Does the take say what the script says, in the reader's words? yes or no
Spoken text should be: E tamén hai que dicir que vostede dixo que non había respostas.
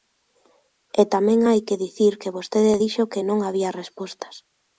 yes